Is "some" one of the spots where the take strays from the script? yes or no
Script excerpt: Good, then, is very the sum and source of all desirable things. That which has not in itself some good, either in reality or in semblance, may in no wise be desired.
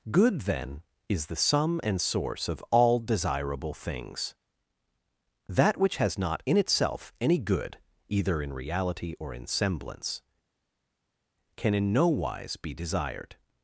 yes